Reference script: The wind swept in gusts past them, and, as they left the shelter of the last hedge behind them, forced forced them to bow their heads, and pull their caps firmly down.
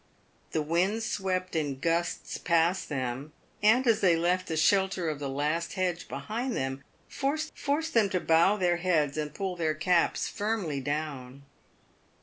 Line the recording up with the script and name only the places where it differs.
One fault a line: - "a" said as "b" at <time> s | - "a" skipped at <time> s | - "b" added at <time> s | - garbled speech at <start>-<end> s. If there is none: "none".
none